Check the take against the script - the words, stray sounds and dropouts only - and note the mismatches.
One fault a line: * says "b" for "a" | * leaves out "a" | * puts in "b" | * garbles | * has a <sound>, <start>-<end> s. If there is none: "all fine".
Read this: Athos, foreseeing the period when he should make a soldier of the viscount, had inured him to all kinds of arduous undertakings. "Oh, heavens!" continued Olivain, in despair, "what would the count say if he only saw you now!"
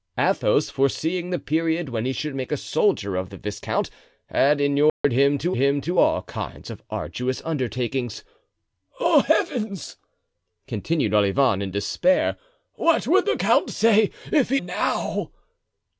* has a dropout, 4.9-5.0 s
* puts in "him to"
* leaves out "only saw you"